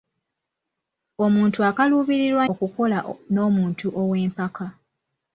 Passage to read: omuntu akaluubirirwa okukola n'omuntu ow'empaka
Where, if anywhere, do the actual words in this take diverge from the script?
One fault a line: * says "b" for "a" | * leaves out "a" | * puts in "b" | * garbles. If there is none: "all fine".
all fine